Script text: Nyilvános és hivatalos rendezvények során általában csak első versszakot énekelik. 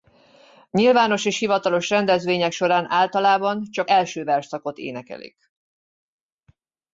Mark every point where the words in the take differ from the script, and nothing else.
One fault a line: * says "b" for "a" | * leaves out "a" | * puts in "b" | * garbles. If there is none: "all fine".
all fine